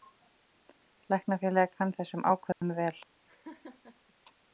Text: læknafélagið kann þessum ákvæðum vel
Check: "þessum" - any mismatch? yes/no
no